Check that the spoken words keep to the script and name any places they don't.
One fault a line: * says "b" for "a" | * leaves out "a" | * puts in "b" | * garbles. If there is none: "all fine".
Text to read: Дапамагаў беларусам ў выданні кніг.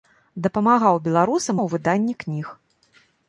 all fine